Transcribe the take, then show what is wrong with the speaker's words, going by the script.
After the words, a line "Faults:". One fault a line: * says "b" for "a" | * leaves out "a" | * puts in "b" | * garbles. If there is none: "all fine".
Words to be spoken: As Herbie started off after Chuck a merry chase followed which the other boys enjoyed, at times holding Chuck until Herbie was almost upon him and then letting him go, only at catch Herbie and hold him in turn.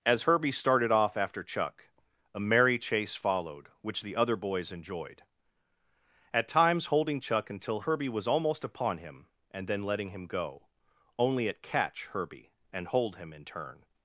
As Herbie started off after Chuck a merry chase followed which the other boys enjoyed, at times holding Chuck until Herbie was almost upon him and then letting him go, only at catch Herbie and hold him in turn.
Faults:
all fine